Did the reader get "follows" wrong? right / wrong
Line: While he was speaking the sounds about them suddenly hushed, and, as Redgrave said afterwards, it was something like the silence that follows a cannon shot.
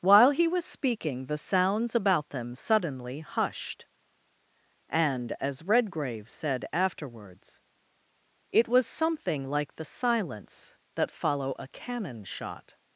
wrong